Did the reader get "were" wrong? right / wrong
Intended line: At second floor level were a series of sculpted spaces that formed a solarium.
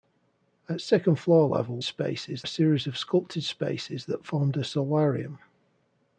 wrong